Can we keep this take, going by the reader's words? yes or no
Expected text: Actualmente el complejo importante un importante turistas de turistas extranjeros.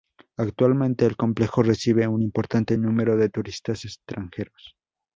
no